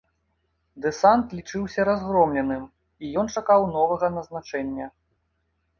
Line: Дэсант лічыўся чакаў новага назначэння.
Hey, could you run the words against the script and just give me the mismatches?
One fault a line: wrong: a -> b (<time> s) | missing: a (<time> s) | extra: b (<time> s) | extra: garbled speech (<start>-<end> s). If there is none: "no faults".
extra: разгромленым і ён (1.9 s)